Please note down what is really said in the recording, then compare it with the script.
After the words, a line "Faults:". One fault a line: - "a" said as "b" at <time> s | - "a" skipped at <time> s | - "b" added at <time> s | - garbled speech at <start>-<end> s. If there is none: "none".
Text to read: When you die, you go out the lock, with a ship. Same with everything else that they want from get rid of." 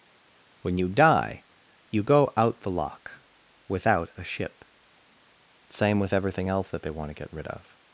When you die, you go out the lock, without a ship. Same with everything else that they want to get rid of."
Faults:
- "with" said as "without" at 3.7 s
- "from" said as "to" at 7.1 s